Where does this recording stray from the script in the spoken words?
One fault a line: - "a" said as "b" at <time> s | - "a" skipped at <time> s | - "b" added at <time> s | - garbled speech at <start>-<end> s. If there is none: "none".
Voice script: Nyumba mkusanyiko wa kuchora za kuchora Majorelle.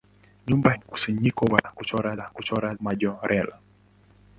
none